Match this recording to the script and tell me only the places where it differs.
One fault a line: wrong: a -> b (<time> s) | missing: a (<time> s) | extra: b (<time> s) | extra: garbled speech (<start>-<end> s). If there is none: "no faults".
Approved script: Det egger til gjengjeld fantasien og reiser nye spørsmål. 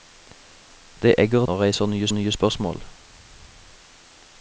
missing: til gjengjeld fantasien (1.5 s)
extra: nye (2.1 s)